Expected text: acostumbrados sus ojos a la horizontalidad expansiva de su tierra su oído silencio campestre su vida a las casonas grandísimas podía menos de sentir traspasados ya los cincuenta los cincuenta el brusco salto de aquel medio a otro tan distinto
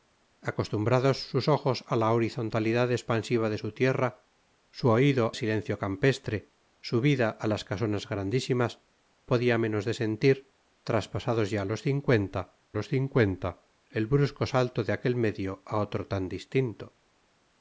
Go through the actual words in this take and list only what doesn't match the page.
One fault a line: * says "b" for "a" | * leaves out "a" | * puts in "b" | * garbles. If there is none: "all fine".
all fine